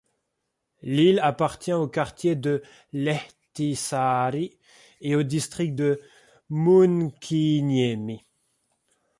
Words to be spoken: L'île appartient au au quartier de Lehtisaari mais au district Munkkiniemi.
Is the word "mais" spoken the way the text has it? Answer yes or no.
no